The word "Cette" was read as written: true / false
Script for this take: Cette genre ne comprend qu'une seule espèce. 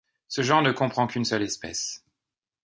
false